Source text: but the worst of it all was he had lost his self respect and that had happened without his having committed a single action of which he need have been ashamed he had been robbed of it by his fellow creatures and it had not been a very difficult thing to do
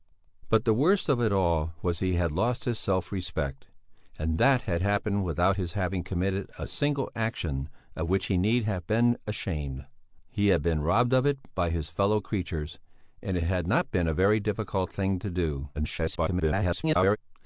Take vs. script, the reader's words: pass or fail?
fail